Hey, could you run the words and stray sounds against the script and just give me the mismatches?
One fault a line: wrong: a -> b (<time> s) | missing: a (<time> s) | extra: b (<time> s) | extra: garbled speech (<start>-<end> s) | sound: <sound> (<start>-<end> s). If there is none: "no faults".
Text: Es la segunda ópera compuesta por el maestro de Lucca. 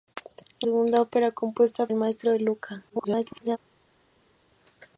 missing: la (0.7 s)
missing: por (1.9 s)
extra: garbled speech (2.9-3.6 s)